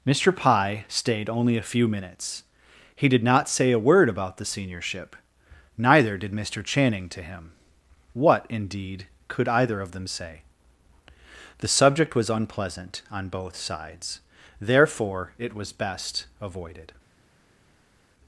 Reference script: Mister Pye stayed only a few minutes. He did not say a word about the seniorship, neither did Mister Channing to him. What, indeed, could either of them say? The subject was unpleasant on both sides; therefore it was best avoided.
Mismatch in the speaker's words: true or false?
false